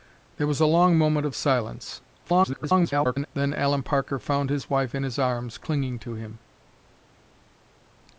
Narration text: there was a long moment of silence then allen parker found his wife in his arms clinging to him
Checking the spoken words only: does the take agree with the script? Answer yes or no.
no